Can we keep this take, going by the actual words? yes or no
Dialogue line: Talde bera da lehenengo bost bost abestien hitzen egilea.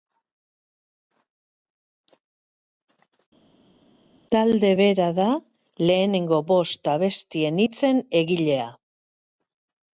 no